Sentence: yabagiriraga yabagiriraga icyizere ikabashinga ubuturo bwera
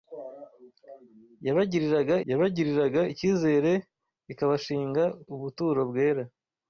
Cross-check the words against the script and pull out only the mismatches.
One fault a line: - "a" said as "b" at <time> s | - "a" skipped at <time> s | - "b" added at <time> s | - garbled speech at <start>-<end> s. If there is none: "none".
none